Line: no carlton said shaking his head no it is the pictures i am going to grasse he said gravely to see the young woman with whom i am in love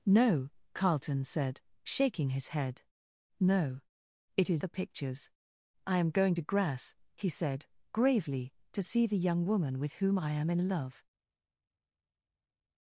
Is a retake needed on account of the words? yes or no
no